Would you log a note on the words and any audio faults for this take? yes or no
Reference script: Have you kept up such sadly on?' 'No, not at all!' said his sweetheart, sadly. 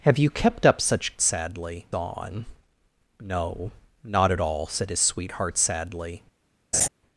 yes